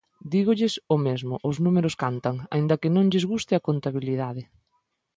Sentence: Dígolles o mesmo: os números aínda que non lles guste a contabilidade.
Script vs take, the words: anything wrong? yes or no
yes